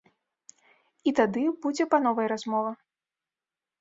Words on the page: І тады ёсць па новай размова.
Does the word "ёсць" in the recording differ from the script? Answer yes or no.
yes